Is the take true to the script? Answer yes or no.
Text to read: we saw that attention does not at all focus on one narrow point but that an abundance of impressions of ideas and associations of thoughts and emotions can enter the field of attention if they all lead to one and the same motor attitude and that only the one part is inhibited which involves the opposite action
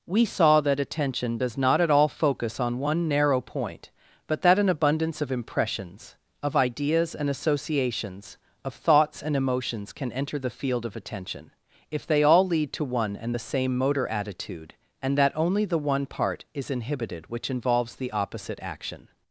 yes